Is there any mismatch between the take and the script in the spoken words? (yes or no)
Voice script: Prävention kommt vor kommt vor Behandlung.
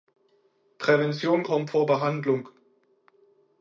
yes